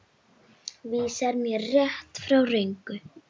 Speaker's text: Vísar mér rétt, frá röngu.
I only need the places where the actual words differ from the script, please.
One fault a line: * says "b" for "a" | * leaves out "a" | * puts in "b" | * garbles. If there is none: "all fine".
all fine